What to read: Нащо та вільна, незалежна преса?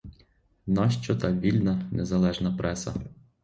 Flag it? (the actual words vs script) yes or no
no